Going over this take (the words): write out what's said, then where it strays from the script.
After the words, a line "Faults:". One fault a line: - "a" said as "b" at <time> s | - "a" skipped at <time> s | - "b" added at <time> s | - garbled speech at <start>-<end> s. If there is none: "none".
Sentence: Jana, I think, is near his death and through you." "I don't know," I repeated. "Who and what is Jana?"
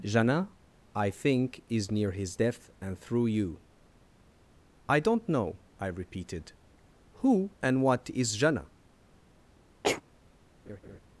Jana, I think, is near his death and through you." "I don't know," I repeated. "Who and what is Jana?"
Faults:
none